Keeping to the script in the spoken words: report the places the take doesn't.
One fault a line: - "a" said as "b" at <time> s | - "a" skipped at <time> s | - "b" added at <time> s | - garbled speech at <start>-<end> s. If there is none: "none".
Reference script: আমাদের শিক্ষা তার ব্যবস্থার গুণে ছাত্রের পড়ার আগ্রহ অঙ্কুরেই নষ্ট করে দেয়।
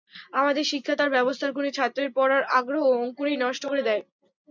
none